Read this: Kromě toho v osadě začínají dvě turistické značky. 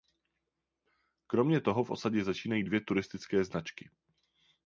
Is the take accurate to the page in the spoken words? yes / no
yes